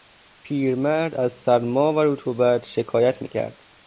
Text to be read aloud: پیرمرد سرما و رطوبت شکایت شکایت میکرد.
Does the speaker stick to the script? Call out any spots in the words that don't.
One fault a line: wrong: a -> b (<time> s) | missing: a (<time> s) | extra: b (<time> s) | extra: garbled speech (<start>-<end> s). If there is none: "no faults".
extra: از (1.1 s)
missing: شکایت (3.2 s)